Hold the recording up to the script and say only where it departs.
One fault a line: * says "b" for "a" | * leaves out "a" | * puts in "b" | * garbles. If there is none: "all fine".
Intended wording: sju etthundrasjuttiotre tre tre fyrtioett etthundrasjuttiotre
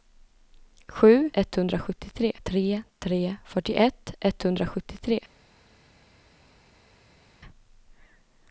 all fine